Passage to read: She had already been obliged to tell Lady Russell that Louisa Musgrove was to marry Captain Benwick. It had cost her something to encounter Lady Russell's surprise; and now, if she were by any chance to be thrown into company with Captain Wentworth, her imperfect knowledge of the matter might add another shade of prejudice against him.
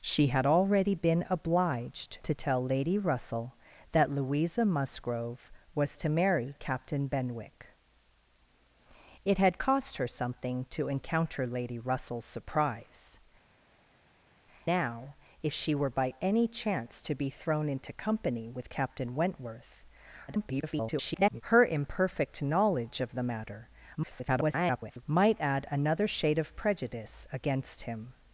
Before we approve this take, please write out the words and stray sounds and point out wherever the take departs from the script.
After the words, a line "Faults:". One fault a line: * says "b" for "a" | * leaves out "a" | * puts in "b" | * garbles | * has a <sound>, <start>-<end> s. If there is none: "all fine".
She had already been obliged to tell Lady Russell that Louisa Musgrove was to marry Captain Benwick. It had cost her something to encounter Lady Russell's surprise; now, if she were by any chance to be thrown into company with Captain Wentworth, [garbled] her imperfect knowledge of the matter [garbled] might add another shade of prejudice against him.
Faults:
* leaves out "and"
* garbles
* garbles